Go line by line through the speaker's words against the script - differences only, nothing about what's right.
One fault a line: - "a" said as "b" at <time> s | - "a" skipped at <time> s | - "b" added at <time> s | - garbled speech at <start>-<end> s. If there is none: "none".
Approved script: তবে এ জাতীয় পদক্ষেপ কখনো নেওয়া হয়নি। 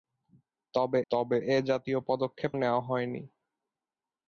- "তবে" added at 1.1 s
- "কখনো" skipped at 2.5 s